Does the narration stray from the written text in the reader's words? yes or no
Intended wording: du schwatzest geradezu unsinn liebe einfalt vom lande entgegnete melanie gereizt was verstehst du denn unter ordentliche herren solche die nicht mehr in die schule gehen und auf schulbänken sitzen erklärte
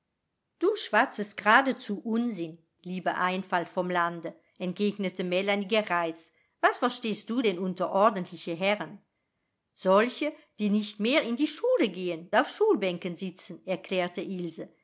yes